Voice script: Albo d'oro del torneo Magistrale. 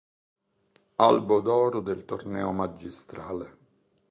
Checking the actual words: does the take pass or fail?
pass